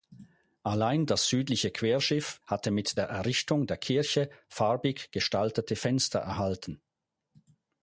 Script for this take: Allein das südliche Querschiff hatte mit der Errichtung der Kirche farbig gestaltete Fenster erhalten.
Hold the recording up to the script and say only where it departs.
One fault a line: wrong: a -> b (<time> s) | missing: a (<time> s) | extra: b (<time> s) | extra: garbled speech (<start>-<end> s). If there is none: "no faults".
no faults